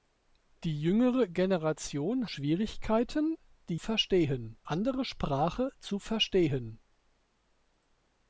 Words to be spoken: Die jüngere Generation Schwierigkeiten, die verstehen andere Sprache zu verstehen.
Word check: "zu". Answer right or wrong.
right